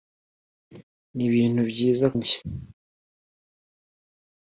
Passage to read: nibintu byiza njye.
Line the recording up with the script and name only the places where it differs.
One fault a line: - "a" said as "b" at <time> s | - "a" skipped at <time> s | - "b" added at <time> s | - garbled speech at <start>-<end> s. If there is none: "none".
none